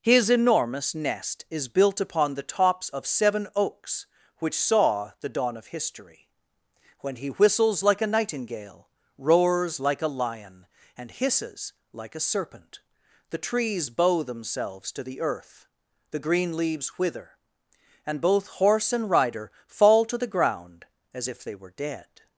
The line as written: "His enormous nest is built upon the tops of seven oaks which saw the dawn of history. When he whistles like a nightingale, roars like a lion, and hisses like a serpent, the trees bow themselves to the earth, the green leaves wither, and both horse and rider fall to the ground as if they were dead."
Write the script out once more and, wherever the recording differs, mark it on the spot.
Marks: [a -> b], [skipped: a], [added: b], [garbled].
"His enormous nest is built upon the tops of seven oaks which saw the dawn of history. When he whistles like a nightingale, roars like a lion, and hisses like a serpent, the trees bow themselves to the earth, the green leaves wither, and both horse and rider fall to the ground as if they were dead."